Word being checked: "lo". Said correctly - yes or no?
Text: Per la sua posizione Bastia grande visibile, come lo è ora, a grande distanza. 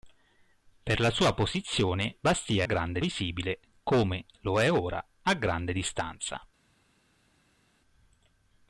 yes